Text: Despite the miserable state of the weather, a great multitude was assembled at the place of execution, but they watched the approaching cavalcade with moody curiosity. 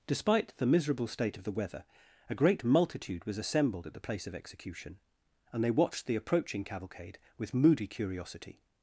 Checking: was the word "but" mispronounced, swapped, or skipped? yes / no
yes